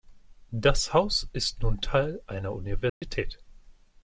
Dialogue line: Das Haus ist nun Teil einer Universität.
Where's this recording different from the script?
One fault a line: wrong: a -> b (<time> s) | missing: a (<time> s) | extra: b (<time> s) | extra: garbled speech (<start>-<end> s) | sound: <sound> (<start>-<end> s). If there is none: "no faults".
sound: dropout (2.9-3.0 s)